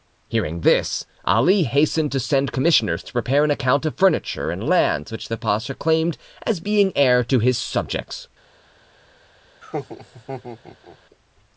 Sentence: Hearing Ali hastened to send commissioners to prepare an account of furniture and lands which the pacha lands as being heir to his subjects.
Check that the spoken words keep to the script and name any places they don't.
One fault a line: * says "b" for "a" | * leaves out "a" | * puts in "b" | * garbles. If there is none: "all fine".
* puts in "this"
* says "claimed" for "lands"